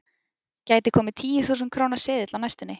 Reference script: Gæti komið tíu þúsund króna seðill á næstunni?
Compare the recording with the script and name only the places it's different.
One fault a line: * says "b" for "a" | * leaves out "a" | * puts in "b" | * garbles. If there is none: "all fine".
all fine